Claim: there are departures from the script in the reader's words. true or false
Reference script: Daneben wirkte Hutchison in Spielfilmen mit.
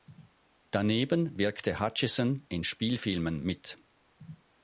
false